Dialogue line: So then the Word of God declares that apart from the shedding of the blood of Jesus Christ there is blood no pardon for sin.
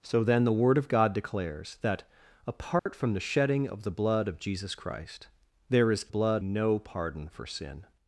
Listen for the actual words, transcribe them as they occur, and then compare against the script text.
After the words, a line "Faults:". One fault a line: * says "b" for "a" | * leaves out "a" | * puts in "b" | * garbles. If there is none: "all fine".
So then the Word of God declares that apart from the shedding of the blood of Jesus Christ there is blood no pardon for sin.
Faults:
all fine